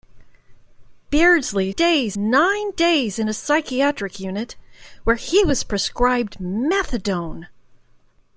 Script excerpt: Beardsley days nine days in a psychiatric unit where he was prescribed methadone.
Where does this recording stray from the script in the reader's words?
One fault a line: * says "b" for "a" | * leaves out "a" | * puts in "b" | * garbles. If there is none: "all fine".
all fine